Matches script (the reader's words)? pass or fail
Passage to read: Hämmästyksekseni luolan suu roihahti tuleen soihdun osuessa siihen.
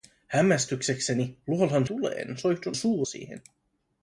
fail